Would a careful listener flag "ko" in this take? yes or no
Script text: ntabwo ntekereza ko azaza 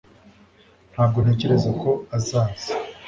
no